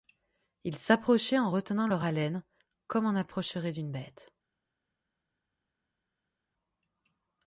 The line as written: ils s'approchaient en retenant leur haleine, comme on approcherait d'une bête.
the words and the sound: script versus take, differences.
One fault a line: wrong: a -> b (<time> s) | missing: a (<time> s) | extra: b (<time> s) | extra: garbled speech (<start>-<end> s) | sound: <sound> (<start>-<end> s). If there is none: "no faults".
no faults